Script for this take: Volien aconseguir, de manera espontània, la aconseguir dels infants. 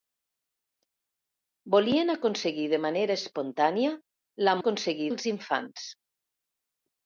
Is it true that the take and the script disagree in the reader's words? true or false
false